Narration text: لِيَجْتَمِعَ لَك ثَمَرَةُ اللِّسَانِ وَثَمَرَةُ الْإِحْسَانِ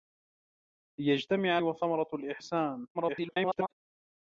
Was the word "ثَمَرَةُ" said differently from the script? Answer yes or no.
yes